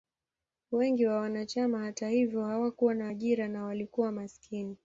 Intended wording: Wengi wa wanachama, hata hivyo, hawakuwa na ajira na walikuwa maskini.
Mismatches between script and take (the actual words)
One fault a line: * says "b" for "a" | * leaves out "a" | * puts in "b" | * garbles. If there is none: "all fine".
all fine